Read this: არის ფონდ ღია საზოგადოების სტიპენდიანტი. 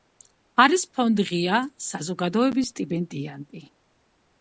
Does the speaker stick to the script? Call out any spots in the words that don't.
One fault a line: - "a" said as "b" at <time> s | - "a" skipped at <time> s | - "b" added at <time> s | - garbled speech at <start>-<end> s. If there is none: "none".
none